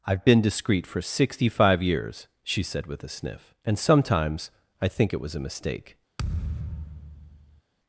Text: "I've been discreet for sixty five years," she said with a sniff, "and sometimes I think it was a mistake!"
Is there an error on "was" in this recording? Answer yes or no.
no